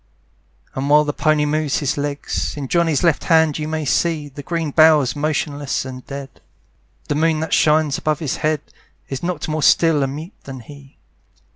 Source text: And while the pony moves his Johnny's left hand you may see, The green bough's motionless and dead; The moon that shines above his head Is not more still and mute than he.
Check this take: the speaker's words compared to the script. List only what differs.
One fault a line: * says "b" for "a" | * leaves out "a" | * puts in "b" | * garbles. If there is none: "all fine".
* puts in "legs In"